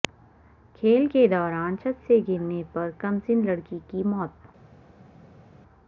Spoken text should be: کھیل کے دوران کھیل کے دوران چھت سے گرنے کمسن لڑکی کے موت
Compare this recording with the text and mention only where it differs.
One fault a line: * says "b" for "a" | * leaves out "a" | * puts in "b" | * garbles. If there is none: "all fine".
* leaves out "کھیل کے دوران"
* puts in "پر"
* says "کی" for "کے"